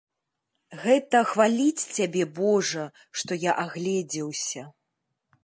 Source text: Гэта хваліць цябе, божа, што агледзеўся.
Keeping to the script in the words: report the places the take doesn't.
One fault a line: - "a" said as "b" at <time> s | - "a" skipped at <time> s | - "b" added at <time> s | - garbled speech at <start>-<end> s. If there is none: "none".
- "я" added at 3.5 s